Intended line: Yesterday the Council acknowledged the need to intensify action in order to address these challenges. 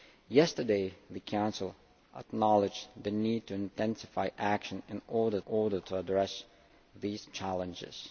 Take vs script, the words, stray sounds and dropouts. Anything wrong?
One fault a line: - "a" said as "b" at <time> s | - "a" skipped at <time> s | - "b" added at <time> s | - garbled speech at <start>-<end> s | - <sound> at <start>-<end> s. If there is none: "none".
- "order" added at 5.5 s